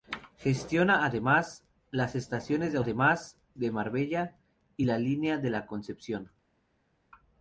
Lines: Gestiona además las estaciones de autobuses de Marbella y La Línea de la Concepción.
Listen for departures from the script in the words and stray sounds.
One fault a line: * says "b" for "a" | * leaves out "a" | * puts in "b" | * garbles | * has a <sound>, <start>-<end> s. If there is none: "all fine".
* says "además" for "autobuses"